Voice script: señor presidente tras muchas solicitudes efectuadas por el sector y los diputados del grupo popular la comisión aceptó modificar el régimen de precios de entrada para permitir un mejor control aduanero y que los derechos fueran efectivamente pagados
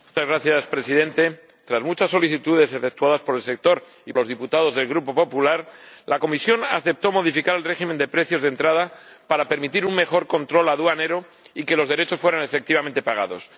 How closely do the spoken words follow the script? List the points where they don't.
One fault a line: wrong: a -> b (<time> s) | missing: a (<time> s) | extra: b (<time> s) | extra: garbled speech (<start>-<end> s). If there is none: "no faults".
no faults